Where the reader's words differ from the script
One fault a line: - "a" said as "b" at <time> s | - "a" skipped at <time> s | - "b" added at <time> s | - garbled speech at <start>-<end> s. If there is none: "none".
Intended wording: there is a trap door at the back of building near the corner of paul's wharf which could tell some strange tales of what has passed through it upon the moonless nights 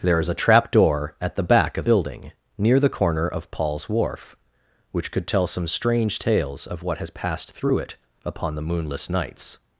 none